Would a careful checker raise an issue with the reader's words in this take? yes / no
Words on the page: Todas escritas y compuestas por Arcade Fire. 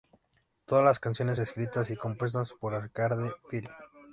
yes